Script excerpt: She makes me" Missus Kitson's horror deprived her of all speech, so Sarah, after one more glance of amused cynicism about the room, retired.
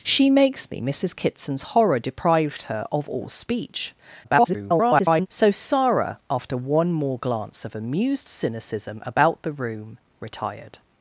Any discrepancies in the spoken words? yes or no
yes